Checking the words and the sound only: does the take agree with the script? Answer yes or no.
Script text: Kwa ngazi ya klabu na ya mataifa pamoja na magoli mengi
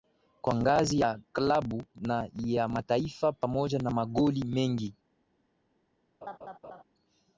no